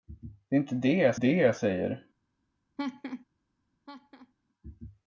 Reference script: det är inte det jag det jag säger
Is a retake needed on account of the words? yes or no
no